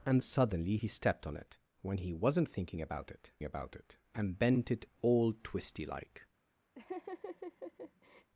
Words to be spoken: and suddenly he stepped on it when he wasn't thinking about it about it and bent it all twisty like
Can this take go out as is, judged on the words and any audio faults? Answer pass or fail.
fail